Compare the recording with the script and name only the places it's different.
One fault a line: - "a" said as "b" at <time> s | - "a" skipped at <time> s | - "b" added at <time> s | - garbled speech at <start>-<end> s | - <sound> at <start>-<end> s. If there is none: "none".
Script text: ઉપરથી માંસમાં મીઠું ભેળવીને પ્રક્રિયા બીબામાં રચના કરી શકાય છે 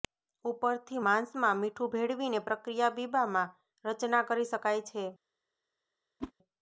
- whoosh at 6.2-6.3 s